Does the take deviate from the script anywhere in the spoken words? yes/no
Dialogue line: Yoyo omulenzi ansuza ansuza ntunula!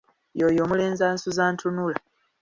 yes